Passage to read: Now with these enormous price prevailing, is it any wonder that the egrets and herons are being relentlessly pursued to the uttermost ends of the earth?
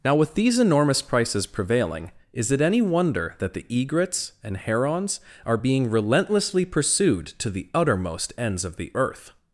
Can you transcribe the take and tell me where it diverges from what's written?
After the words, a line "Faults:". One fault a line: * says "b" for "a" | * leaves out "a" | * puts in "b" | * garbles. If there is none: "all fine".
Now with these enormous prices prevailing, is it any wonder that the egrets and herons are being relentlessly pursued to the uttermost ends of the earth?
Faults:
* says "prices" for "price"